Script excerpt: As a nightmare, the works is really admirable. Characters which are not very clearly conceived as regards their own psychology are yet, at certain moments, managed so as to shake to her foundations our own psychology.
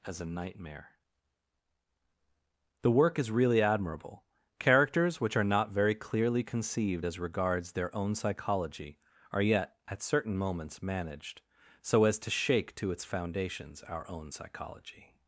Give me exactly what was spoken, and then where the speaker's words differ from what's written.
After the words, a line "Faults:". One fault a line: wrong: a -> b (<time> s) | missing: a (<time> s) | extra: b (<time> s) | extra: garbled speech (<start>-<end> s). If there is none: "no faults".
As a nightmare, the work is really admirable. Characters which are not very clearly conceived as regards their own psychology are yet, at certain moments, managed so as to shake to its foundations our own psychology.
Faults:
wrong: works -> work (2.9 s)
wrong: her -> its (12.9 s)